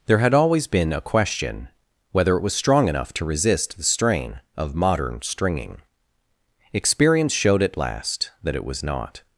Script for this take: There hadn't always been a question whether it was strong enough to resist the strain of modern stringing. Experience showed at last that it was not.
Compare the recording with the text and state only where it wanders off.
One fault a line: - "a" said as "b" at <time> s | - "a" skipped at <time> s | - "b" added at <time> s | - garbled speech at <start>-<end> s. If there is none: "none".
- "hadn't" said as "had" at 0.2 s